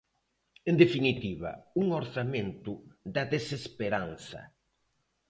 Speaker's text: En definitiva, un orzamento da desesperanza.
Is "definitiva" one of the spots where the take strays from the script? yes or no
no